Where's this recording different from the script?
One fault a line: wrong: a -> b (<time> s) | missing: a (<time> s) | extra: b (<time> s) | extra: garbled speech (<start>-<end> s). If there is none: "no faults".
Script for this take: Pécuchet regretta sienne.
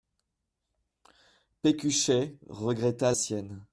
no faults